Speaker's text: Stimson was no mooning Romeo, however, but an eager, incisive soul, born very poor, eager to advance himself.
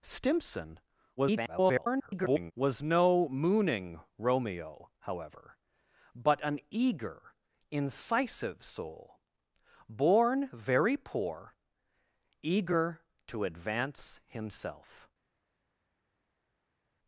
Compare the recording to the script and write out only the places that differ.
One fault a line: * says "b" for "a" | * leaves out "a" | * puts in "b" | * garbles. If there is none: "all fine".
* garbles